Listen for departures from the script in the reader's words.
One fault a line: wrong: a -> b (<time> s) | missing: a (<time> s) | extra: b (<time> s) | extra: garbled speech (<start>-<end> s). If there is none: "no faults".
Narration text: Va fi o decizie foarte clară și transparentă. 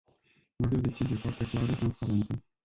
missing: fi (0.7 s)
missing: și (1.7 s)